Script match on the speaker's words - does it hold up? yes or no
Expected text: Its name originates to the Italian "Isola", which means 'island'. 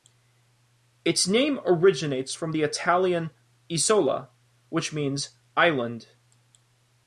no